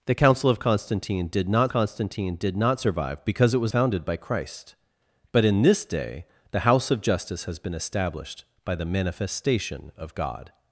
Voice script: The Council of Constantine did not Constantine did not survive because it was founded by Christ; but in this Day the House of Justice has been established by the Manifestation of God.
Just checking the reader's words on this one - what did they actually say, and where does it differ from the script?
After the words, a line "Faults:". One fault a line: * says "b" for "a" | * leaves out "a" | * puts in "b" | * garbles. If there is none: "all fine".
The Council of Constantine did not Constantine did not survive because it was founded by Christ; but in this Day the House of Justice has been established by the Manifestation of God.
Faults:
all fine